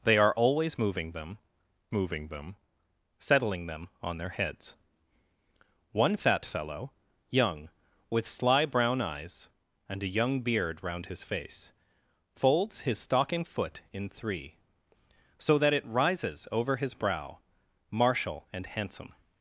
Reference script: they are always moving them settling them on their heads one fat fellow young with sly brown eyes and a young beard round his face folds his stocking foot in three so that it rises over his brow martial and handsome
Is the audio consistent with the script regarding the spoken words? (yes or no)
no